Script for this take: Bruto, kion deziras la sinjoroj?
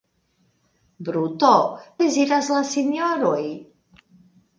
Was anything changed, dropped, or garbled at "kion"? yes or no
yes